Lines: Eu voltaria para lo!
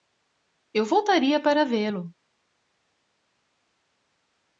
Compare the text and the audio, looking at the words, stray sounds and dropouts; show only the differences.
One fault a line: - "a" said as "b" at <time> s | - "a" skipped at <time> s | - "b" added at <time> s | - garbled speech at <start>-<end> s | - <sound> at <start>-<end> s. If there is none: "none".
- "vê" added at 1.6 s